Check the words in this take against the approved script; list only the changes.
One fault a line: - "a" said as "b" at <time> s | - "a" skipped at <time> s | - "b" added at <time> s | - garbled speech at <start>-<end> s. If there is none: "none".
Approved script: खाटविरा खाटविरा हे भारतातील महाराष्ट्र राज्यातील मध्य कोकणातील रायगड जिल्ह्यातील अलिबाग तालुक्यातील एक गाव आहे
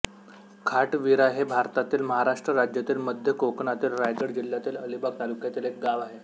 - "खाटविरा" skipped at 1.3 s